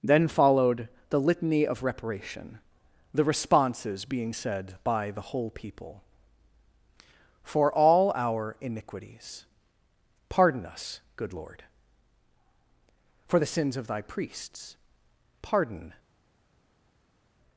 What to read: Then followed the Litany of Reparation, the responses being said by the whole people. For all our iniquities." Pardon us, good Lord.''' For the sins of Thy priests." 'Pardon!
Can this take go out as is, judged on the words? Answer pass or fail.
pass